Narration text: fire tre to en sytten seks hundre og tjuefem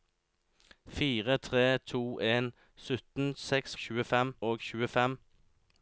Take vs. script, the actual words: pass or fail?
fail